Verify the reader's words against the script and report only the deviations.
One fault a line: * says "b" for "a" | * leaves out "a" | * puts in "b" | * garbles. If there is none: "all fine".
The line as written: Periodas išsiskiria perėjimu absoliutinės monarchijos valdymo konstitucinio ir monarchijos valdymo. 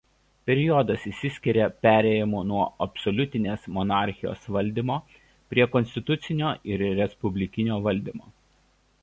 * puts in "nuo"
* puts in "prie"
* says "respublikinio" for "monarchijos"